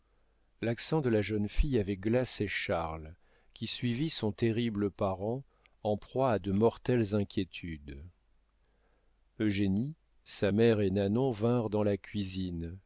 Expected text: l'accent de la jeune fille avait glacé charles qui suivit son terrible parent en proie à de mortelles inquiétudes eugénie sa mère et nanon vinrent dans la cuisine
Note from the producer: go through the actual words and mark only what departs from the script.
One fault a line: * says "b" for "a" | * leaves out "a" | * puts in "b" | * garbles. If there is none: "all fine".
all fine